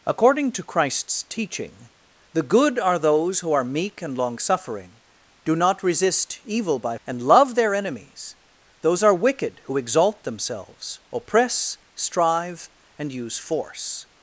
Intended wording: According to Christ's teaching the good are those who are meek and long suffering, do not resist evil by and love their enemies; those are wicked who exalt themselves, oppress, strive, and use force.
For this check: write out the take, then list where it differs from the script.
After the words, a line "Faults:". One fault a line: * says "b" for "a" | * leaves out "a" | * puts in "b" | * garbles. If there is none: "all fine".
According to Christ's teaching the good are those who are meek and long suffering, do not resist evil by and love their enemies; those are wicked who exalt themselves, oppress, strive, and use force.
Faults:
all fine